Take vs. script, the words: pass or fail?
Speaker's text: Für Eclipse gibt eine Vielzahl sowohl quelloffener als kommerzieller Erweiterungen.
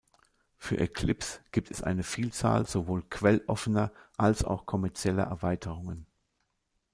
fail